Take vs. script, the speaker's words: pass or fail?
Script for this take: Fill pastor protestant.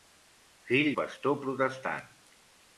pass